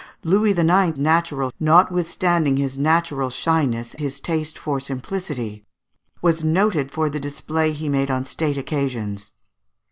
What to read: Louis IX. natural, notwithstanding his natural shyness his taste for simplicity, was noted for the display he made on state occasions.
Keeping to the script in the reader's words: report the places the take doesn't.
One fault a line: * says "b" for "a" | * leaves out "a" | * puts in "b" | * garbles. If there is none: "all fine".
all fine